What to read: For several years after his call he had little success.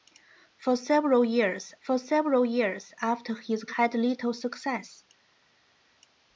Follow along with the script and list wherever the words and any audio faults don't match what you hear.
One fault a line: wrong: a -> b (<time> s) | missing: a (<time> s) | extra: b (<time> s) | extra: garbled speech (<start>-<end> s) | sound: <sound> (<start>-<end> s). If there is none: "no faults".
extra: for several years (1.8 s)
missing: call he (3.7 s)